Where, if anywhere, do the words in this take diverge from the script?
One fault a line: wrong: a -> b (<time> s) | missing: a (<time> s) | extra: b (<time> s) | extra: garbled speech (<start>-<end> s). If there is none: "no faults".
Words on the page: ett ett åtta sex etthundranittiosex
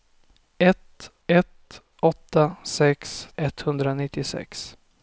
no faults